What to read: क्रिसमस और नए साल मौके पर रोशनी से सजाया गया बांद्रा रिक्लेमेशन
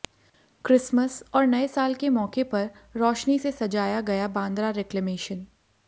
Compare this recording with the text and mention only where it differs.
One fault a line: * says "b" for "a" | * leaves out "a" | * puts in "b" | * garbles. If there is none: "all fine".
* puts in "के"